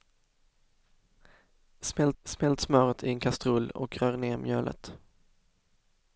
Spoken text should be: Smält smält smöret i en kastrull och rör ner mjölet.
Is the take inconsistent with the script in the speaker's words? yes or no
no